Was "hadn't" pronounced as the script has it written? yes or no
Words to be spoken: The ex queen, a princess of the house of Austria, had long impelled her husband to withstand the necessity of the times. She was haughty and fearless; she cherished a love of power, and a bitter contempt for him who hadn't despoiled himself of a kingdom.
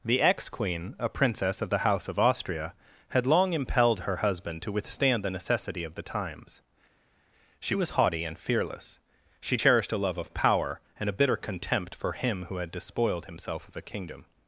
no